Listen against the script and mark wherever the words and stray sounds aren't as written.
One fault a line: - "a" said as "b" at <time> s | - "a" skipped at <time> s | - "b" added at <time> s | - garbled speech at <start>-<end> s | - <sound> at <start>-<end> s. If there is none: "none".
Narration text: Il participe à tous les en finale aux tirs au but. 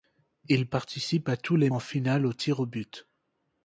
none